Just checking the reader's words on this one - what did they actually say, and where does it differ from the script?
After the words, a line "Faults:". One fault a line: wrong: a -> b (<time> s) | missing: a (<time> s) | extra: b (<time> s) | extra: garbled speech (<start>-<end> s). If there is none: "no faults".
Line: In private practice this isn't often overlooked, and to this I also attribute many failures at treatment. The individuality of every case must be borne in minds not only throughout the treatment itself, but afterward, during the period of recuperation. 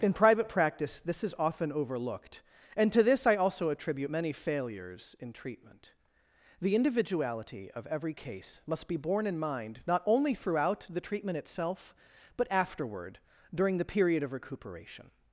In private practice this is often overlooked, and to this I also attribute many failures in treatment. The individuality of every case must be borne in mind not only throughout the treatment itself, but afterward, during the period of recuperation.
Faults:
wrong: isn't -> is (1.2 s)
wrong: at -> in (5.2 s)
wrong: minds -> mind (9.4 s)